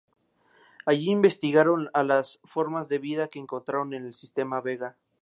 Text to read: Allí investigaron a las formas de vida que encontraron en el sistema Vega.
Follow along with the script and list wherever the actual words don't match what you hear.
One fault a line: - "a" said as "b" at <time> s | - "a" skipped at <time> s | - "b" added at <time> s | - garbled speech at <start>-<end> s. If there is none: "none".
none